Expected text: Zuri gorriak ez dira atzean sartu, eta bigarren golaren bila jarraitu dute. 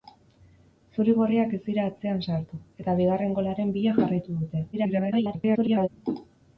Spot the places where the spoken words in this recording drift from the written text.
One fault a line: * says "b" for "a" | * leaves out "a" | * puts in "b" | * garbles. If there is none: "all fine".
* garbles